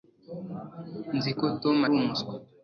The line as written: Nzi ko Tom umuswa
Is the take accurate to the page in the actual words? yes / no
yes